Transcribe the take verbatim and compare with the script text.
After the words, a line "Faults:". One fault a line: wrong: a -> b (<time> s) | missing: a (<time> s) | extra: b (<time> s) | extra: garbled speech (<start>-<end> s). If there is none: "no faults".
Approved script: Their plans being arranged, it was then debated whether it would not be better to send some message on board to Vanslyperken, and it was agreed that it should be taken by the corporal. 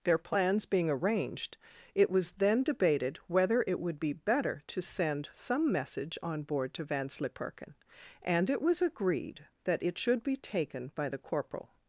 Their plans being arranged, it was then debated whether it would be better to send some message on board to Vanslyperken, and it was agreed that it should be taken by the corporal.
Faults:
missing: not (4.0 s)